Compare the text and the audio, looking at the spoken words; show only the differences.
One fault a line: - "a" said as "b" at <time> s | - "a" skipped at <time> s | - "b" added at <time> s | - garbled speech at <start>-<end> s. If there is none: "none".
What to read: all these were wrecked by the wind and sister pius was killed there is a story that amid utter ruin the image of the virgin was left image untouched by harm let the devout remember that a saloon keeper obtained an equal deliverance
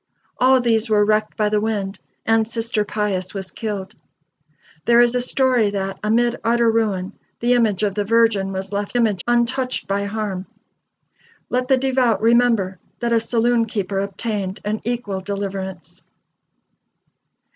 none